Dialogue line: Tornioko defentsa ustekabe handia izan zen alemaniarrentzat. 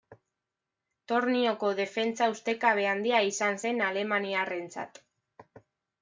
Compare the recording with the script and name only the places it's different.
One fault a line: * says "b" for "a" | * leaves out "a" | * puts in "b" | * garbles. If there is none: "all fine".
all fine